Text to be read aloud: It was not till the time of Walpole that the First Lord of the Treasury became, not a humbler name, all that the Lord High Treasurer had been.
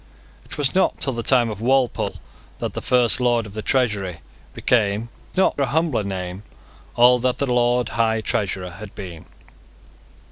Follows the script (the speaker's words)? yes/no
yes